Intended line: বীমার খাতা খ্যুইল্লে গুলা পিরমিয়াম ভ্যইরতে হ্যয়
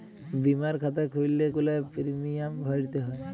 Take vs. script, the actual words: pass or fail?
pass